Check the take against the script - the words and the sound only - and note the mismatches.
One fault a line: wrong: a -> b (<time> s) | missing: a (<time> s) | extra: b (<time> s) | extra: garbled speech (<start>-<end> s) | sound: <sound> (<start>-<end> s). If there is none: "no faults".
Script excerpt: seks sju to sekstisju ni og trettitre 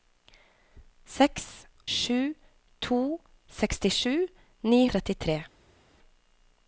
no faults